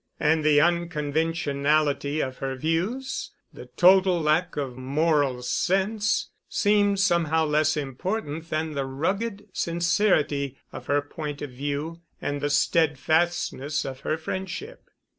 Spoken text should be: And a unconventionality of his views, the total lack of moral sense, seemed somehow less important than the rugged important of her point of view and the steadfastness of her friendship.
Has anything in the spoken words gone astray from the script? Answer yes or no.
yes